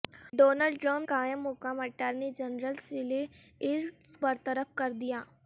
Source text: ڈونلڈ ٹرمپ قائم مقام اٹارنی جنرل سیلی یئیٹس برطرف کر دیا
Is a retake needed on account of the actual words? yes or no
no